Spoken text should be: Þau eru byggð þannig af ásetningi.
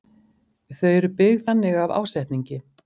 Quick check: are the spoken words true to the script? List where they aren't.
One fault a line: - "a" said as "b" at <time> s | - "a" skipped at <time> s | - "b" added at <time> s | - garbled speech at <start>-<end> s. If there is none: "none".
none